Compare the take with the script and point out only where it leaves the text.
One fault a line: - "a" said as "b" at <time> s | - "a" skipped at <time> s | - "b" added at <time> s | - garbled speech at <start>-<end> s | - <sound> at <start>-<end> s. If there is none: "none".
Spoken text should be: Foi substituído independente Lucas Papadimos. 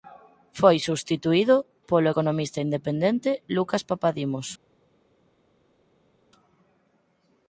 - "polo economista" added at 1.9 s